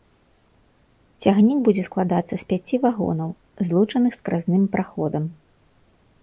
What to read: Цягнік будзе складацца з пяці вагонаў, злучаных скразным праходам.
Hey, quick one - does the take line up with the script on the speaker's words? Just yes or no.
yes